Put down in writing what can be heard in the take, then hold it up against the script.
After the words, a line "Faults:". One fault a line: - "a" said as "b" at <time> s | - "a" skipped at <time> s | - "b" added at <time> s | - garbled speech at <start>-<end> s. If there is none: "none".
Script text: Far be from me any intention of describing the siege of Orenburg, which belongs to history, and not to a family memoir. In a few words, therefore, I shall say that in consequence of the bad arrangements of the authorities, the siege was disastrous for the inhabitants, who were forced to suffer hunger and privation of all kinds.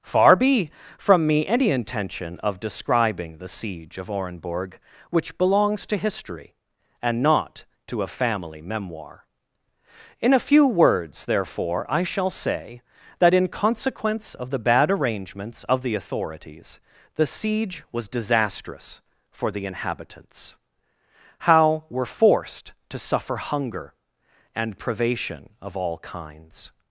Far be from me any intention of describing the siege of Orenburg, which belongs to history, and not to a family memoir. In a few words, therefore, I shall say that in consequence of the bad arrangements of the authorities, the siege was disastrous for the inhabitants, how were forced to suffer hunger and privation of all kinds.
Faults:
- "who" said as "how" at 21.4 s